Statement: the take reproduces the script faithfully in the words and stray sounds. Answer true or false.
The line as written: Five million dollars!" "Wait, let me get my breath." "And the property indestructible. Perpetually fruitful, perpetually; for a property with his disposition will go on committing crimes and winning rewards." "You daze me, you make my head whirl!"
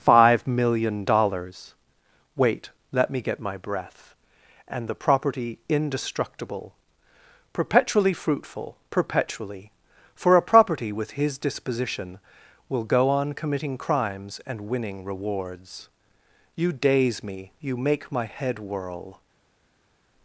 true